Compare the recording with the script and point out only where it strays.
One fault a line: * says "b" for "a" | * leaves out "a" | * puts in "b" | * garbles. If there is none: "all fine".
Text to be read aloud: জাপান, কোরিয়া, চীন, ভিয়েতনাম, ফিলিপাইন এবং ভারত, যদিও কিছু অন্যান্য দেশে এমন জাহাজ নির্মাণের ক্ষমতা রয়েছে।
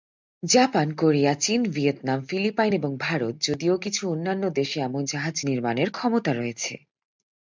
all fine